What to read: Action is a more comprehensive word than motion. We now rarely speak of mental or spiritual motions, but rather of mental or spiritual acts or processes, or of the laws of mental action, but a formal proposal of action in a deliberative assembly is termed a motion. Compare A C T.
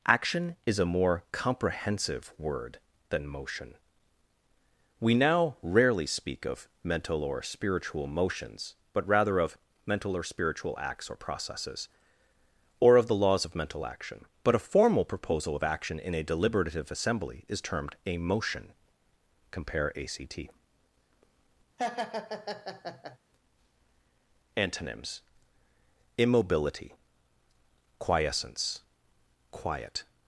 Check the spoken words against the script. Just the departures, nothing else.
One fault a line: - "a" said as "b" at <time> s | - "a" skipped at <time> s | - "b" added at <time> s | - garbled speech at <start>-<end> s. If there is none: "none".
- "Antonyms immobility quiescence quiet" added at 24.6 s